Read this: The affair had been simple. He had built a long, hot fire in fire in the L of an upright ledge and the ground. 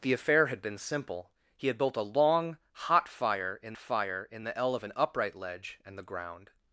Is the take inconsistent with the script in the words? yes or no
no